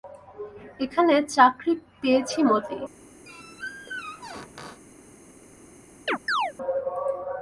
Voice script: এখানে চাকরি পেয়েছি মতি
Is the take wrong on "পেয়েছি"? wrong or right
right